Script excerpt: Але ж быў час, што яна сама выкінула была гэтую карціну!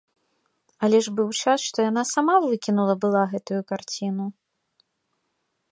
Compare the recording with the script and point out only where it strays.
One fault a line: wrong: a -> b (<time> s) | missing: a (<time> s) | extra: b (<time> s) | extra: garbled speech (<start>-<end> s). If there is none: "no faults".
no faults